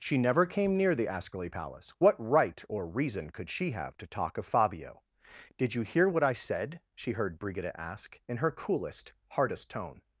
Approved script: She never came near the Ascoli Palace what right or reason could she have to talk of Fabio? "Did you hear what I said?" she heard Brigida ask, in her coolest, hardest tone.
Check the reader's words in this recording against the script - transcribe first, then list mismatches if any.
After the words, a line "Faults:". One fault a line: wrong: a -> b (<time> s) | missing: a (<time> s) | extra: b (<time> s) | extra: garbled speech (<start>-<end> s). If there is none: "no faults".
She never came near the Ascoli Palace what right or reason could she have to talk of Fabio? "Did you hear what I said?" she heard Brigida ask, in her coolest, hardest tone.
Faults:
no faults